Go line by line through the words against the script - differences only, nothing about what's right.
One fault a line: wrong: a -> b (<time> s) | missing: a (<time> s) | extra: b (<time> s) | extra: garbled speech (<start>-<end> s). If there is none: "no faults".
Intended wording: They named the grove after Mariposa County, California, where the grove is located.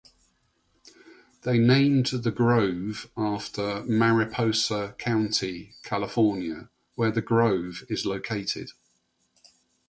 no faults